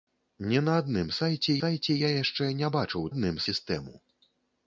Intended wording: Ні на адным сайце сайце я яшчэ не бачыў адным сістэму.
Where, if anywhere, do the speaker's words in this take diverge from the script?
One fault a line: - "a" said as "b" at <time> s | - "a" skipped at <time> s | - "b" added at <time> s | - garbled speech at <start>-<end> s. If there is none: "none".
none